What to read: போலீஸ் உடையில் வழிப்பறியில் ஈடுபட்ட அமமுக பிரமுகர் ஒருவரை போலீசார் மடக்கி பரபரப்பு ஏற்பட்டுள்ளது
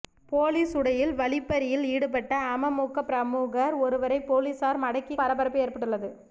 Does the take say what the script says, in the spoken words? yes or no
yes